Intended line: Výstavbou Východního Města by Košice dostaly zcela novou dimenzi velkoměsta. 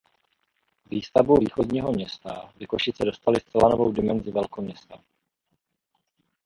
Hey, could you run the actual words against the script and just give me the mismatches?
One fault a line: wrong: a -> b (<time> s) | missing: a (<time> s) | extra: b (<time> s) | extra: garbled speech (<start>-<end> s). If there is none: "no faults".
no faults